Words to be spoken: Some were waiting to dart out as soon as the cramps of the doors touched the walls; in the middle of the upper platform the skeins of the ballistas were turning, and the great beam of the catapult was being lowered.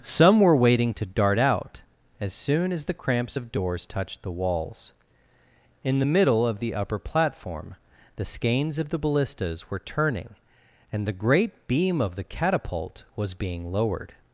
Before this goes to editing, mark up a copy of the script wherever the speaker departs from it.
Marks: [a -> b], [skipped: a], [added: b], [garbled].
Some were waiting to dart out as soon as the cramps of [skipped: the] doors touched the walls; in the middle of the upper platform the skeins of the ballistas were turning, and the great beam of the catapult was being lowered.